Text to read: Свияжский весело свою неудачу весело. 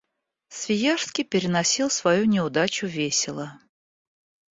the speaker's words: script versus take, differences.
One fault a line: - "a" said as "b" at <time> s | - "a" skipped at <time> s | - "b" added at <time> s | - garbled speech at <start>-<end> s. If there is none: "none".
- "весело" said as "переносил" at 1.2 s